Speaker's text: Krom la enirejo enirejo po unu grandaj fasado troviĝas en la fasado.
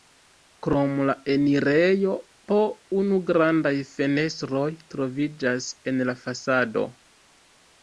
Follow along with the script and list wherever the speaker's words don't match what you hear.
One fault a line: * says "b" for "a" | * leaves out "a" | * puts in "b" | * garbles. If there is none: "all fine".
* leaves out "enirejo"
* says "fenestroj" for "fasado"